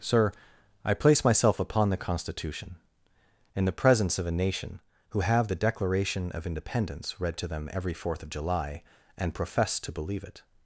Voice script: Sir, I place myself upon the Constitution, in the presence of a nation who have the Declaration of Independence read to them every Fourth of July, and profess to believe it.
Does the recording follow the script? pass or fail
pass